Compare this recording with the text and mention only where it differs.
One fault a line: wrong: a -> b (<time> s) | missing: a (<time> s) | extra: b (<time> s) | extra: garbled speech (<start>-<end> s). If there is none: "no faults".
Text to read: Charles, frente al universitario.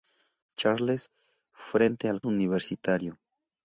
no faults